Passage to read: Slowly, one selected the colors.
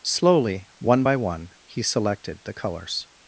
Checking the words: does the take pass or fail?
fail